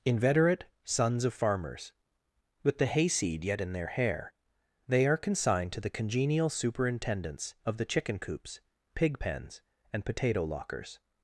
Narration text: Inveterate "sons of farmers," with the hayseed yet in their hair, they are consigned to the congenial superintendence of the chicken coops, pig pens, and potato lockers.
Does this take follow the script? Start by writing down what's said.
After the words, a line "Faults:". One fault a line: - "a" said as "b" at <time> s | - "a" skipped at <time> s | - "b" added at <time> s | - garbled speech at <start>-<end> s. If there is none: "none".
Inveterate "sons of farmers," with the hayseed yet in their hair, they are consigned to the congenial superintendence of the chicken coops, pig pens, and potato lockers.
Faults:
none